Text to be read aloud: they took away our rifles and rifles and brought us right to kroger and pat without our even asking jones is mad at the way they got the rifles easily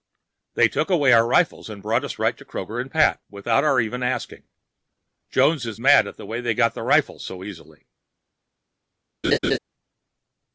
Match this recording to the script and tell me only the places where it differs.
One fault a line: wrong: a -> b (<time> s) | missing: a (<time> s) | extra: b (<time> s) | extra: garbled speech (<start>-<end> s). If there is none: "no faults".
missing: rifles and (1.8 s)
extra: so (7.2 s)